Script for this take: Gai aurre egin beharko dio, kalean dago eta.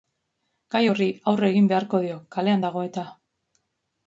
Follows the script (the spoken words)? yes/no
no